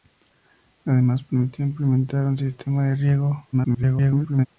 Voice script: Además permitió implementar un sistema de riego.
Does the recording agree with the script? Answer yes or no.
no